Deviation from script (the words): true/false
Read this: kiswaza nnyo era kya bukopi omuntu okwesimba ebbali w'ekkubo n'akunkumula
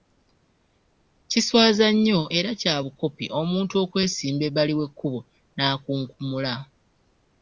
false